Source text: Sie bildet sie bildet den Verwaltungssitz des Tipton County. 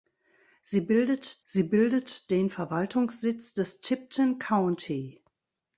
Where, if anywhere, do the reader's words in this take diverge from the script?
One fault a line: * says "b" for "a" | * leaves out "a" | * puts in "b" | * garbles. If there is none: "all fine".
all fine